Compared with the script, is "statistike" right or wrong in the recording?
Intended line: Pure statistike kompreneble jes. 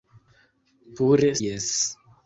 wrong